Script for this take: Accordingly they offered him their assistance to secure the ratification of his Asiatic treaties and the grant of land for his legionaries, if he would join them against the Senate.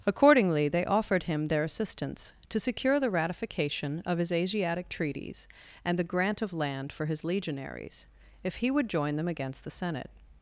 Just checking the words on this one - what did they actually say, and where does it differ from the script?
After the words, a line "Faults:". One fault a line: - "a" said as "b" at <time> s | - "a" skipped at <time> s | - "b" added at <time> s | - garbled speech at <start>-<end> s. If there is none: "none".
Accordingly they offered him their assistance to secure the ratification of his Asiatic treaties and the grant of land for his legionaries, if he would join them against the Senate.
Faults:
none